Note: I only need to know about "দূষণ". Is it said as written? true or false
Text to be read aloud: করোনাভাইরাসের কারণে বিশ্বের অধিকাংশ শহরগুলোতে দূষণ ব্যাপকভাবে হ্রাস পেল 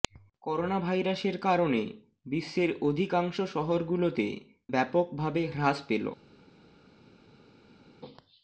false